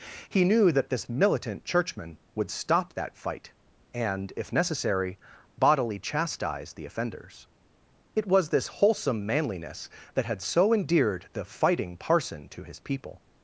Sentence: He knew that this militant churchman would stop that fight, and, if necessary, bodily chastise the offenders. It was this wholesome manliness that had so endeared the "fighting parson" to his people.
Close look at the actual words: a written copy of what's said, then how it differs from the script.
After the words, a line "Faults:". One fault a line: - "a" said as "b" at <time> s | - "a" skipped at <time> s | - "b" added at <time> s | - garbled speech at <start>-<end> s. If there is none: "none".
He knew that this militant churchman would stop that fight, and, if necessary, bodily chastise the offenders. It was this wholesome manliness that had so endeared the "fighting parson" to his people.
Faults:
none